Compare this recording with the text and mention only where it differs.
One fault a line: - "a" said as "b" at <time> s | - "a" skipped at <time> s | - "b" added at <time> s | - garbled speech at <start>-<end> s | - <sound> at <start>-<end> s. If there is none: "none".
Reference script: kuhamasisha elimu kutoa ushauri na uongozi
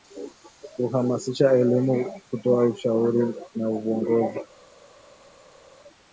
none